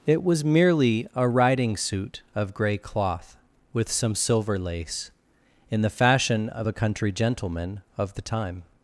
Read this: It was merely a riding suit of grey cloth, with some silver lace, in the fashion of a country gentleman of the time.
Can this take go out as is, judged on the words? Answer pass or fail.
pass